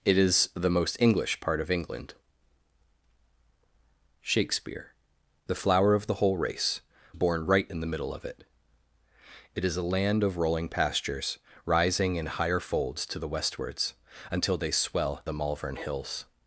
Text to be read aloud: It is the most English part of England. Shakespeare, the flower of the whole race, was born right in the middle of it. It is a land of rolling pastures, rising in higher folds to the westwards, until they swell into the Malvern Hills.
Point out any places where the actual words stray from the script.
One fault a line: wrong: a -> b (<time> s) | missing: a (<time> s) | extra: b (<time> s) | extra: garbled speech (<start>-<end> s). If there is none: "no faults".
missing: was (6.8 s)
missing: into (15.2 s)